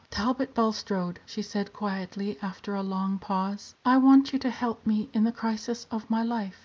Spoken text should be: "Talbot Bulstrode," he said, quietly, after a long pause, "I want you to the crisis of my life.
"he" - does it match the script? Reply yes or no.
no